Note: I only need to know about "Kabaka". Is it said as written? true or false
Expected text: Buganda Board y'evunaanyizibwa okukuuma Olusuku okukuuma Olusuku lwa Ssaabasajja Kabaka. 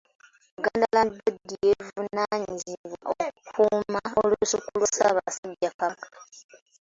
true